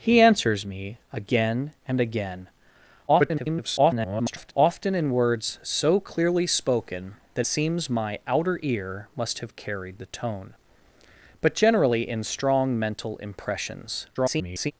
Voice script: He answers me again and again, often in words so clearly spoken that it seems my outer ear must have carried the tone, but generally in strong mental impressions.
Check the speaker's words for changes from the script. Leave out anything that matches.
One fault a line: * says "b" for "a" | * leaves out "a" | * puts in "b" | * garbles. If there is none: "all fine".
* garbles
* leaves out "it"
* garbles